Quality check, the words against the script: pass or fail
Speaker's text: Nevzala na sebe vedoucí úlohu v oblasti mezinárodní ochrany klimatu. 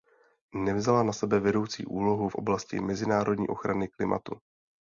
pass